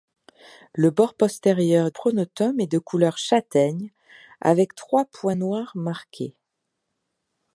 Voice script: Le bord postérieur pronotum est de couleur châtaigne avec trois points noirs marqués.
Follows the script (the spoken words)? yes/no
yes